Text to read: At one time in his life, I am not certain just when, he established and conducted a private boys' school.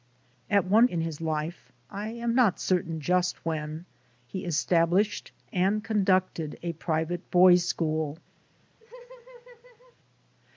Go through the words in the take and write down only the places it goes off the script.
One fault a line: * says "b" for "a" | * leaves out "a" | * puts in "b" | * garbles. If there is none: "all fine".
* leaves out "time"